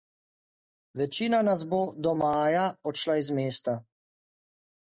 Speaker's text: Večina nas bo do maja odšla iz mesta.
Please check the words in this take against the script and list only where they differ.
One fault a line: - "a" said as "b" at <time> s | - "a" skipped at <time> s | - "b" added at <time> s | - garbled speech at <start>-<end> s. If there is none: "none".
none